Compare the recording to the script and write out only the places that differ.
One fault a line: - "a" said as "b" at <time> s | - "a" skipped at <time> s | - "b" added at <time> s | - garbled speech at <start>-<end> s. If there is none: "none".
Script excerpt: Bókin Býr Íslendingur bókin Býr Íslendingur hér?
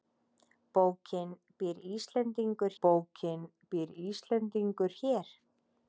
none